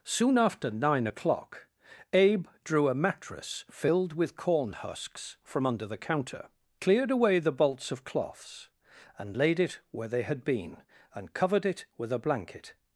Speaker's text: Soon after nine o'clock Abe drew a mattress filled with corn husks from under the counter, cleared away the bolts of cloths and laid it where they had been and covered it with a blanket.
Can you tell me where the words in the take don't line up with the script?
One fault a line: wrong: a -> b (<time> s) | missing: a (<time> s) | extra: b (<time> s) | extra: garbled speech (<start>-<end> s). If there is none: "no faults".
no faults